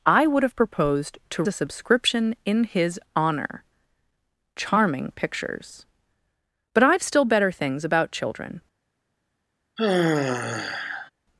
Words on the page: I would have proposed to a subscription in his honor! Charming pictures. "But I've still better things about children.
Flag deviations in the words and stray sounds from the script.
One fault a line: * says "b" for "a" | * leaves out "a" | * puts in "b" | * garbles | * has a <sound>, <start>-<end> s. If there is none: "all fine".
* has a sigh, 9.8-11.1 s